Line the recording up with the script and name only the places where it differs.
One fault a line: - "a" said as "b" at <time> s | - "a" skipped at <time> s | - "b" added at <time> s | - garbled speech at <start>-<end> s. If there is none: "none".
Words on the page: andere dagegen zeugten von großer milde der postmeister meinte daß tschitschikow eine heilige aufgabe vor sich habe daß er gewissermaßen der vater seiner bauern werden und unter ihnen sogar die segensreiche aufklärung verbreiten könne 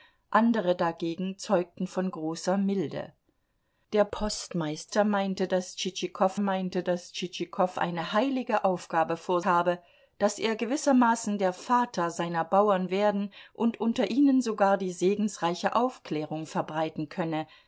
- "meinte daß tschitschikow" added at 6.4 s
- "sich" skipped at 9.4 s